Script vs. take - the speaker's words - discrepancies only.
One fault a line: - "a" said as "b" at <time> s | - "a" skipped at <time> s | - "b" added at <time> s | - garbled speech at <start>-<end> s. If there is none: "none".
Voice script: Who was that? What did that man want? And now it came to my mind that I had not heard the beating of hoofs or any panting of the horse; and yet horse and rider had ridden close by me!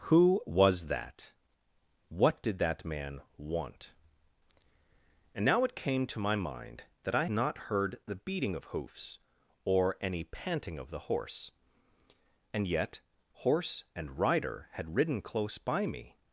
- "had" skipped at 7.2 s